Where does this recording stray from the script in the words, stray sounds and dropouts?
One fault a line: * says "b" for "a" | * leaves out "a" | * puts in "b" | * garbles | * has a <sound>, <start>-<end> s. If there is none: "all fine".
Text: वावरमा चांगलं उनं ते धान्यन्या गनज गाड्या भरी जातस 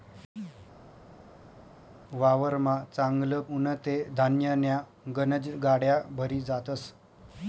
all fine